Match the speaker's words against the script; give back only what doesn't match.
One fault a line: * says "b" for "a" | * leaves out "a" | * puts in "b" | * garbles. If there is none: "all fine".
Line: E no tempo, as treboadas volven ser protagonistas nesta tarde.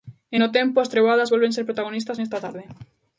all fine